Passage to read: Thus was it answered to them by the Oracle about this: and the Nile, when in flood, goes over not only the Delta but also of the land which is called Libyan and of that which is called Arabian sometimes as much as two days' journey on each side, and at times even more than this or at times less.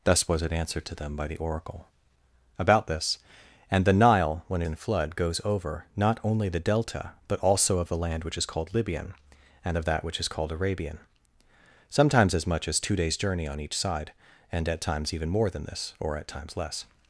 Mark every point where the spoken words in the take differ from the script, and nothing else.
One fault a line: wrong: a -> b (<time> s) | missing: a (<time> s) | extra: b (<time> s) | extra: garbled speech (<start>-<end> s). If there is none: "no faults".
no faults